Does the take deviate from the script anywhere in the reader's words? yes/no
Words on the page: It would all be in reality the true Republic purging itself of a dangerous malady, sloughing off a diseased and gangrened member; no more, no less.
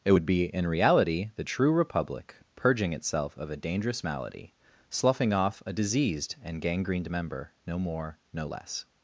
yes